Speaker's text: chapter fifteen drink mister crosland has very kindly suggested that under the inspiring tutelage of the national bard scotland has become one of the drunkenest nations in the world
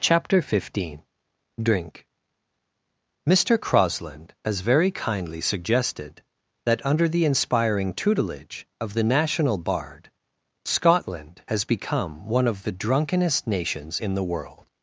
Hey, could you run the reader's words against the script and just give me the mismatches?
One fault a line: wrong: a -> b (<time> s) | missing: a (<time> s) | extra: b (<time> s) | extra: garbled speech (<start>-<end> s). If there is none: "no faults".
no faults